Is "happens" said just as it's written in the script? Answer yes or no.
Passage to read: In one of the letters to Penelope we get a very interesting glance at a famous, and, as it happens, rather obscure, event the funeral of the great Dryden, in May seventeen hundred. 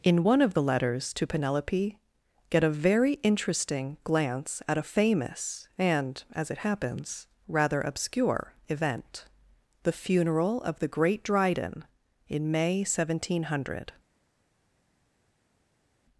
yes